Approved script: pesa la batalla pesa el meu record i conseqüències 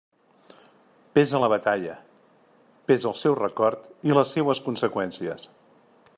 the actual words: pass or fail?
fail